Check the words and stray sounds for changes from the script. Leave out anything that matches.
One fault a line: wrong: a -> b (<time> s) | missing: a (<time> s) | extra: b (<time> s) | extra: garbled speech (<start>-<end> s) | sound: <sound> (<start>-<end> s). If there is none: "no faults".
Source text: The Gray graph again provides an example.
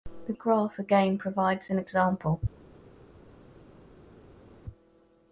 missing: Gray (0.3 s)